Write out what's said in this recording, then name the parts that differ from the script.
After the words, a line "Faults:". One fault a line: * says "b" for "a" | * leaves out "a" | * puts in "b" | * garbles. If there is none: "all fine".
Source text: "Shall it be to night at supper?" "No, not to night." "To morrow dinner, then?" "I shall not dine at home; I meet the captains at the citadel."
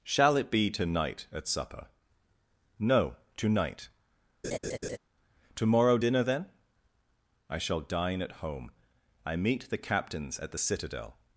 "Shall it be to night at supper?" "No, to night." "To morrow dinner, then?" "I shall dine at home; I meet the captains at the citadel."
Faults:
* leaves out "not"
* leaves out "not"